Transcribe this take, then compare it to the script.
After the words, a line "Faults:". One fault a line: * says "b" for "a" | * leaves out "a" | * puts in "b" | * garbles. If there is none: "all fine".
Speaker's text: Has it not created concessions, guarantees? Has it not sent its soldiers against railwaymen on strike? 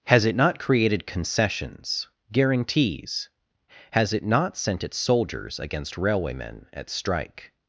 Has it not created concessions, guarantees? Has it not sent its soldiers against railwaymen at strike?
Faults:
* says "at" for "on"